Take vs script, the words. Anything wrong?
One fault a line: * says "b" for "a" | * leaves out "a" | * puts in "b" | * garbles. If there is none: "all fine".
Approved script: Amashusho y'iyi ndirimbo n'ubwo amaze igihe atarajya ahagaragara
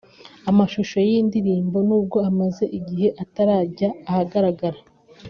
all fine